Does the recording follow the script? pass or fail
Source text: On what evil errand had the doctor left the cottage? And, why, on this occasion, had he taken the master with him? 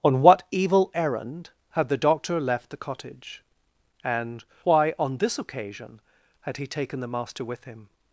pass